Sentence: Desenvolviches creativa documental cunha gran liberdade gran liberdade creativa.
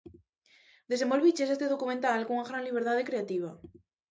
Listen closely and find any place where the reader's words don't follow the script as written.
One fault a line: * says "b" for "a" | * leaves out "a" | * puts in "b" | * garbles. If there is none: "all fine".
* says "este" for "creativa"
* leaves out "gran liberdade"